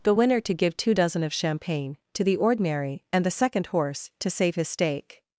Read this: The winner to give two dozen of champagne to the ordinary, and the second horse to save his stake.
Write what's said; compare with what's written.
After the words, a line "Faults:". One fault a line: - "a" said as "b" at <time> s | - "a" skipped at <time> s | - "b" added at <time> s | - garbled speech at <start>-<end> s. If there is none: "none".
The winner to give two dozen of champagne to the ordinary, and the second horse to save his stake.
Faults:
none